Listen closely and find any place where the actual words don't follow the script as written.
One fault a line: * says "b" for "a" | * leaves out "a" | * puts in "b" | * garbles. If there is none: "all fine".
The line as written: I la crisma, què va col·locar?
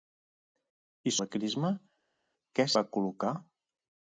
all fine